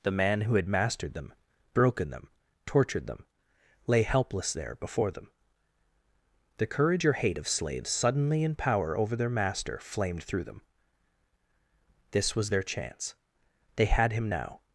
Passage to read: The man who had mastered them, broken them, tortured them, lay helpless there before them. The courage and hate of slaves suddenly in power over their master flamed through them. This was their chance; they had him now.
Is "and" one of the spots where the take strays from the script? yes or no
yes